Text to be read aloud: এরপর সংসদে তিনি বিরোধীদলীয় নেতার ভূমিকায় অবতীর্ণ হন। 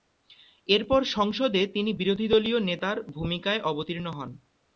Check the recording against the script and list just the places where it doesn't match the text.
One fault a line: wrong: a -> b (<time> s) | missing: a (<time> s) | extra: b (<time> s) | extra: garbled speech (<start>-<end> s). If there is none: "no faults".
no faults